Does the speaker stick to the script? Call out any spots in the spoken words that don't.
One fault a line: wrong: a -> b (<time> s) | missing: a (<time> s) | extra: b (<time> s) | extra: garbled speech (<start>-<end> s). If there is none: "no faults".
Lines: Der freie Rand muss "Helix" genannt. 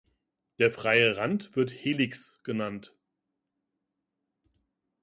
wrong: muss -> wird (1.6 s)